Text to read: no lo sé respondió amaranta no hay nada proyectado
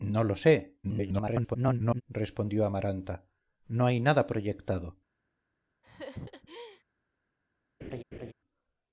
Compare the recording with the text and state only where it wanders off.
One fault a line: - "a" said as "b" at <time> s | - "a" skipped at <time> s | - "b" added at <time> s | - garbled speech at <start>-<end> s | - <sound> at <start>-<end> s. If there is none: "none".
- garbled speech at 0.8-2.0 s
- laugh at 5.8-6.8 s
- laugh at 7.8-8.3 s